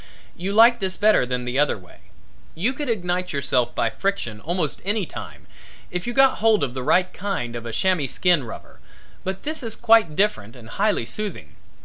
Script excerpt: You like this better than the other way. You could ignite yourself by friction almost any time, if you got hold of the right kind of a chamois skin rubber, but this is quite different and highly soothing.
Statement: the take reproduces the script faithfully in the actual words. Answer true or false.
true